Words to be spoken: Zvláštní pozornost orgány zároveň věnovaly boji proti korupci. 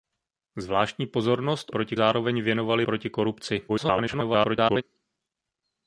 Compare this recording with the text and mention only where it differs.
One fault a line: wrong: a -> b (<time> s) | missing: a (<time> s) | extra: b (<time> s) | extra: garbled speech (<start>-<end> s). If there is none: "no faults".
wrong: orgány -> proti (1.7 s)
missing: boji (2.8 s)
extra: garbled speech (3.7-4.8 s)